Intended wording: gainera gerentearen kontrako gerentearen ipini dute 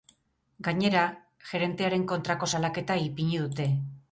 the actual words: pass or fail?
fail